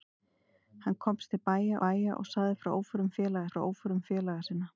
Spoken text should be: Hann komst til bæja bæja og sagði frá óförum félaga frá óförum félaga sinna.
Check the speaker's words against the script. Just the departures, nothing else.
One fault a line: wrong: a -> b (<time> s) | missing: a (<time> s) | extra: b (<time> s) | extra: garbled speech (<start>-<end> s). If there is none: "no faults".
no faults